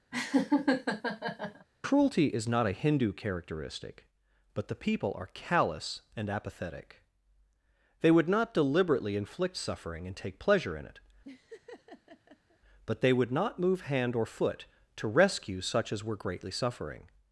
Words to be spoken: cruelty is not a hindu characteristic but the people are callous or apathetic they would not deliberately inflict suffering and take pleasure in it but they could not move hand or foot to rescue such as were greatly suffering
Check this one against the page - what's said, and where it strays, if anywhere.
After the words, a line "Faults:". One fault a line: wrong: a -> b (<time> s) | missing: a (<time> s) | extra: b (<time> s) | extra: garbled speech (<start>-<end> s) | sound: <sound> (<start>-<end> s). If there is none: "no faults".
cruelty is not a hindu characteristic but the people are callous and apathetic they would not deliberately inflict suffering and take pleasure in it but they would not move hand or foot to rescue such as were greatly suffering
Faults:
sound: laugh (0.1-1.7 s)
wrong: or -> and (6.2 s)
sound: laugh (11.2-12.6 s)
wrong: could -> would (13.1 s)